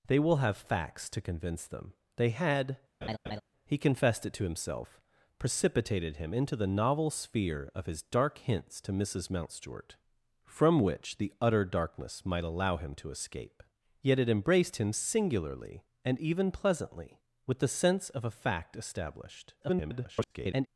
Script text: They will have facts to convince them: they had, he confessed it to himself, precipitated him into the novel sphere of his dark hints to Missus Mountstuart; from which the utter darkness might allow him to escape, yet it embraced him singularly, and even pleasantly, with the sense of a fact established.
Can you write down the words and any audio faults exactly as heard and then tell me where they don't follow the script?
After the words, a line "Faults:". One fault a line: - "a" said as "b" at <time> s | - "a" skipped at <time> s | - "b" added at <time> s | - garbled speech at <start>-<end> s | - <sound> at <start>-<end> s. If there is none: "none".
They will have facts to convince them: they had, he confessed it to himself, precipitated him into the novel sphere of his dark hints to Missus Mountstuart; from which the utter darkness might allow him to escape, yet it embraced him singularly, and even pleasantly, with the sense of a fact established. [garbled]
Faults:
- laugh at 3.0-3.4 s
- garbled speech at 19.6-20.7 s